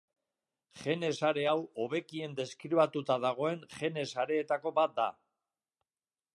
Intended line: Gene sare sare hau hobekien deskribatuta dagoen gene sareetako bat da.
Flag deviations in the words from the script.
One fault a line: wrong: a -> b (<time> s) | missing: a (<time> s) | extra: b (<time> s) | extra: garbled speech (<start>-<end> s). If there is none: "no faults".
missing: sare (1.4 s)